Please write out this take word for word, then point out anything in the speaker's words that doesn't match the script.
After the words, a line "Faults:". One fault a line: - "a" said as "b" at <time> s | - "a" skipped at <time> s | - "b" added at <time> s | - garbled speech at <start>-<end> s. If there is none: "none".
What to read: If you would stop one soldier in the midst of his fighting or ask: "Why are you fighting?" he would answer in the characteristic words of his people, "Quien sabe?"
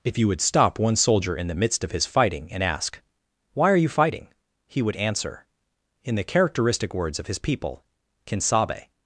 If you would stop one soldier in the midst of his fighting and ask: "Why are you fighting?" he would answer in the characteristic words of his people, "Quien sabe?"
Faults:
- "or" said as "and" at 2.5 s